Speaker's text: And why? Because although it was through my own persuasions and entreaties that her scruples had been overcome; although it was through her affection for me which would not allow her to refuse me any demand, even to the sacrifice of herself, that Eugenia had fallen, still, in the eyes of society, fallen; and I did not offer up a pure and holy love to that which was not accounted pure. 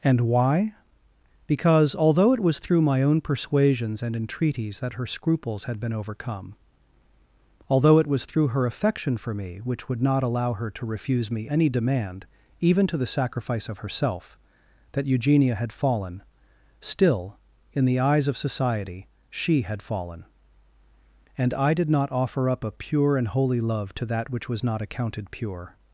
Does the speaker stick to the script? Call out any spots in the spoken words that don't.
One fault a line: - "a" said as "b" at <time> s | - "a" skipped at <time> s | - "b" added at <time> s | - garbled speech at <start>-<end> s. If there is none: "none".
- "she had" added at 19.3 s